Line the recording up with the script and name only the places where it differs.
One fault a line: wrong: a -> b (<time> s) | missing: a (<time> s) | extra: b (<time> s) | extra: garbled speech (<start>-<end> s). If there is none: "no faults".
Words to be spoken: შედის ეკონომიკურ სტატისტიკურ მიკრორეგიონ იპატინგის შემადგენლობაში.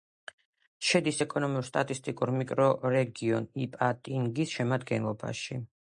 no faults